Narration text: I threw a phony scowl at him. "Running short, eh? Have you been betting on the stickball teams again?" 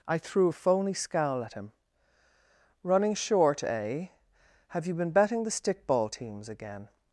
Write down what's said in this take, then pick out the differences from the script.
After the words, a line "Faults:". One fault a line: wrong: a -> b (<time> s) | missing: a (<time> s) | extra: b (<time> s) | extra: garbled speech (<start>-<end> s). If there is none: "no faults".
I threw a phony scowl at him. "Running short, eh? Have you been betting the stickball teams again?"
Faults:
missing: on (5.4 s)